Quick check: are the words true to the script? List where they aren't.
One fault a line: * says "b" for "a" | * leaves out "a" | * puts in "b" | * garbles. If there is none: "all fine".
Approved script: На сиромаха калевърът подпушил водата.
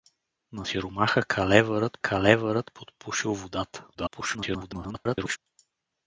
* puts in "калевърът"
* garbles